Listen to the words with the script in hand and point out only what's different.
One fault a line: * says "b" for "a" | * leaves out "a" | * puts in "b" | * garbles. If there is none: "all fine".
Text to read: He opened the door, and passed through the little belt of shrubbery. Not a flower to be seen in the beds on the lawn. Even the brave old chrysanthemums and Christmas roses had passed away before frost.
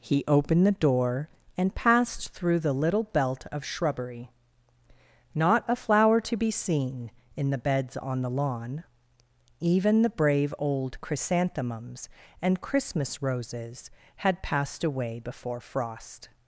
all fine